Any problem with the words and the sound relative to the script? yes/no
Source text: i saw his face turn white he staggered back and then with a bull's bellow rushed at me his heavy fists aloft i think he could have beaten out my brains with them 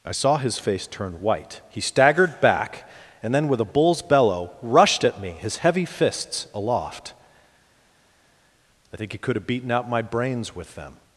no